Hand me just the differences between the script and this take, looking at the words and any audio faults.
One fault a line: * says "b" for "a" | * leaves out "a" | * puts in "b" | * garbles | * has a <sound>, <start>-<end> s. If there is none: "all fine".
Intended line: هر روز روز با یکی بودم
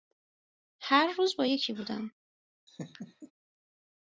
* leaves out "روز"
* has a laugh, 2.7-3.3 s